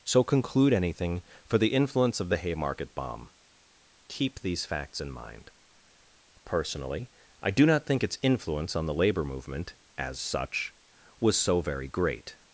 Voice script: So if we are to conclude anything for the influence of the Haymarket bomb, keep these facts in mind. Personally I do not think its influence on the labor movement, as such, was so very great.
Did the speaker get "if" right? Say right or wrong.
wrong